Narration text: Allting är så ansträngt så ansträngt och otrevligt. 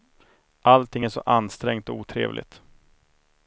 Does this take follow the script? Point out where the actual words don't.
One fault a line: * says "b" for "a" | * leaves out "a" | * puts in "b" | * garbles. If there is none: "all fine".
* leaves out "så ansträngt"